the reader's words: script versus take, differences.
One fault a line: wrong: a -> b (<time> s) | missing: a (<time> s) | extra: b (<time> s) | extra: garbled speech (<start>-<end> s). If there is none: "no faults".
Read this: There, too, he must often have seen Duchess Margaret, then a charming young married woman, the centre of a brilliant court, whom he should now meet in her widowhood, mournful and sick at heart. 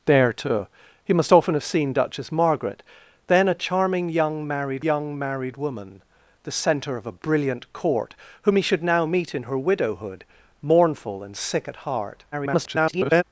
extra: young married (4.8 s)
extra: garbled speech (12.3-13.2 s)